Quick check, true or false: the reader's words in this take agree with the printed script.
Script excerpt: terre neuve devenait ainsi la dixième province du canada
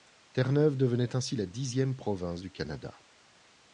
true